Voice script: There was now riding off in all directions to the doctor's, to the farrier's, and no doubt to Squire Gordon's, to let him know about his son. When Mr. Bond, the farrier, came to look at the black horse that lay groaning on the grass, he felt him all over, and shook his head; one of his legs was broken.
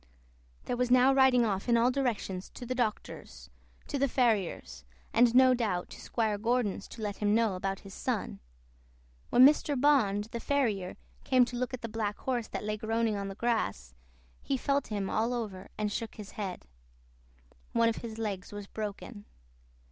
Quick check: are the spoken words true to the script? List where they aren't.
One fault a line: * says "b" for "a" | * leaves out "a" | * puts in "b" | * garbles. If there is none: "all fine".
all fine